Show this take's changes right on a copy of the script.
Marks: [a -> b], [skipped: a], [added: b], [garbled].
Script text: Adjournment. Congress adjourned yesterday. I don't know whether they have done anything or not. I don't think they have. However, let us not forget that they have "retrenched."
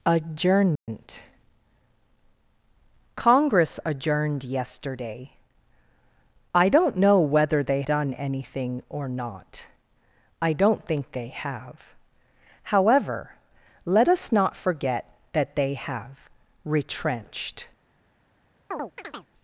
Adjournment. Congress adjourned yesterday. I don't know whether they [skipped: have] done anything or not. I don't think they have. However, let us not forget that they have "retrenched."